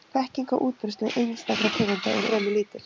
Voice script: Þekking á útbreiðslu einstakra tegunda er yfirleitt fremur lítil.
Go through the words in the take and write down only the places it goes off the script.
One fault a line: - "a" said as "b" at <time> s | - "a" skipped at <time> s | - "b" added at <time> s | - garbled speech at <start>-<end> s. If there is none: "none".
- "yfirleitt" skipped at 2.3 s